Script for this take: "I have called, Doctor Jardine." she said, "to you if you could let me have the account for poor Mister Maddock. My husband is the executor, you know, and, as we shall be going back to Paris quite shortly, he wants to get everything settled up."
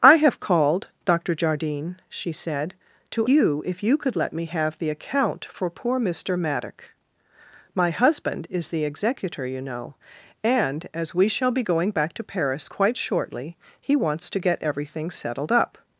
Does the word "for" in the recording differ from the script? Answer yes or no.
no